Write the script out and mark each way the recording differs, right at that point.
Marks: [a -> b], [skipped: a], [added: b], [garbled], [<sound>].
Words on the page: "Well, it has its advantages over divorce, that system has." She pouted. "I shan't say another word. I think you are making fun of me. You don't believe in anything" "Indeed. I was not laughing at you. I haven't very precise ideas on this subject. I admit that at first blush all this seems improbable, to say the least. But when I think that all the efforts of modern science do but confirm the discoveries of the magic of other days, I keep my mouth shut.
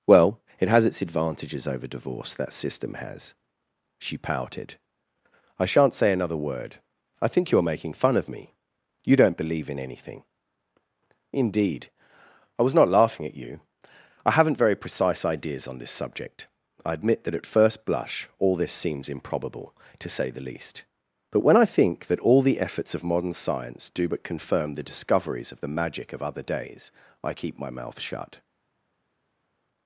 "Well, it has its advantages over divorce, that system has." She pouted. "I shan't say another word. I think you are making fun of me. You don't believe in anything" "Indeed. I was not laughing at you. I haven't very precise ideas on this subject. I admit that at first blush all this seems improbable, to say the least. But when I think that all the efforts of modern science do but confirm the discoveries of the magic of other days, I keep my mouth shut.